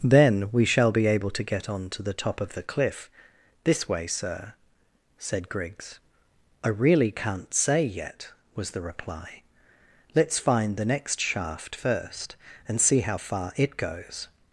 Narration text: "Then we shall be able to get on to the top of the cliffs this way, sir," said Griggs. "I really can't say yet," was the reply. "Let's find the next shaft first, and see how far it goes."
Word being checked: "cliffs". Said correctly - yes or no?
no